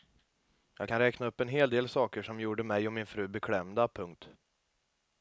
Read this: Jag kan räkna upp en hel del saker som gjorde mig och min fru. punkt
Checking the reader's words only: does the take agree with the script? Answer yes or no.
no